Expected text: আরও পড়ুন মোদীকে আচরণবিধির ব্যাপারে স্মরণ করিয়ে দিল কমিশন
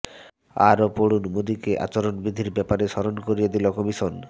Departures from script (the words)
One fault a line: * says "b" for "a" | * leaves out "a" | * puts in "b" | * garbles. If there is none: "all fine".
all fine